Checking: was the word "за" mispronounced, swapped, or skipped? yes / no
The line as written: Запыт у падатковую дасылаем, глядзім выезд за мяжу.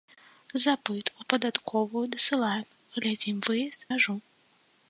yes